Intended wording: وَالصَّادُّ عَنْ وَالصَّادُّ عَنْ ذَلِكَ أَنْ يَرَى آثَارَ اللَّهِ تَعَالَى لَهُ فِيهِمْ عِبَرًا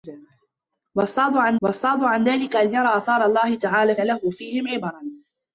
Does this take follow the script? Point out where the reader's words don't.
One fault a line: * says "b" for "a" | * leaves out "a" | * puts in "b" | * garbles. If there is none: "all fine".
all fine